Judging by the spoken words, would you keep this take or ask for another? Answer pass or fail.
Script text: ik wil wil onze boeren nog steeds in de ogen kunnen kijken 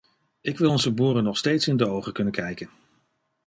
fail